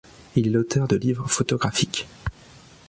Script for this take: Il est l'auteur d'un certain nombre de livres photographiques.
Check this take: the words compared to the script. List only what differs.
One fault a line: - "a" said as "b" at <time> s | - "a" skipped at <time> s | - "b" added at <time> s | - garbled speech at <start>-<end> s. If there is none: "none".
- "d'un certain nombre" skipped at 0.9 s